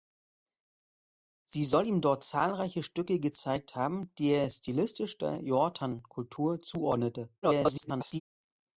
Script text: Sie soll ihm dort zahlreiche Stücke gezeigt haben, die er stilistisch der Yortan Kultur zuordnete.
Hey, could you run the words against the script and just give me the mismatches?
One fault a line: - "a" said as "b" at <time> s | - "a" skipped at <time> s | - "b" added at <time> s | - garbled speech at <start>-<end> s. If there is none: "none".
- garbled speech at 7.4-8.2 s